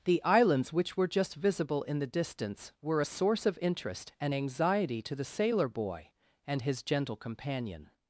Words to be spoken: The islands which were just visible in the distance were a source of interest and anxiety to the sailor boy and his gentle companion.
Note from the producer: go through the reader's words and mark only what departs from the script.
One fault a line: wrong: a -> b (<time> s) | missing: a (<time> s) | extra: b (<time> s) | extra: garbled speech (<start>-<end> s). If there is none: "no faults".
no faults